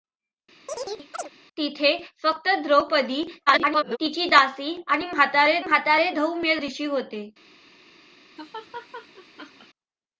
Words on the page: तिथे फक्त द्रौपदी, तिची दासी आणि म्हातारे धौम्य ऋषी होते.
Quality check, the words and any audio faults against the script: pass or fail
fail